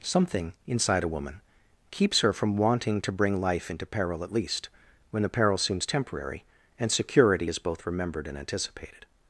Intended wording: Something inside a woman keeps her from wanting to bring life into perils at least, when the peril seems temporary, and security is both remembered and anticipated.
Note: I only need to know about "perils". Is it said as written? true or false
false